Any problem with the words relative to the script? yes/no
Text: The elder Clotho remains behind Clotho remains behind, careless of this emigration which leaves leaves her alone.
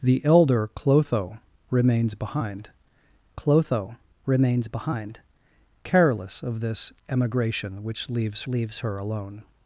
no